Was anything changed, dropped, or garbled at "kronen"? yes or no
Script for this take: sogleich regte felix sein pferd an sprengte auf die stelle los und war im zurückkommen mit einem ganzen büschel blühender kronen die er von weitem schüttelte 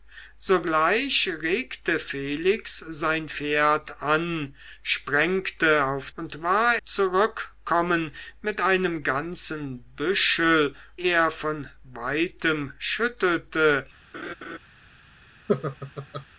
yes